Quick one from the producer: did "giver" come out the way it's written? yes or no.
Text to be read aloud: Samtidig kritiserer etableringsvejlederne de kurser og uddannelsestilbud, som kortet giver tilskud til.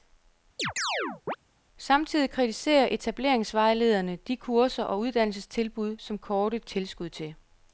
no